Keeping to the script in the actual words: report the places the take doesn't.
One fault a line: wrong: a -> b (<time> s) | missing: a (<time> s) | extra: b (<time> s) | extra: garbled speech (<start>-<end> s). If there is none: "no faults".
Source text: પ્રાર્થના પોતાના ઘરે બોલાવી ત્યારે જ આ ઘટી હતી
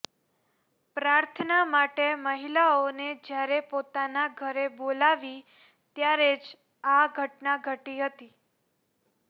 extra: માટે મહિલાઓને જ્યારે (1.7 s)
extra: ઘટના (7.2 s)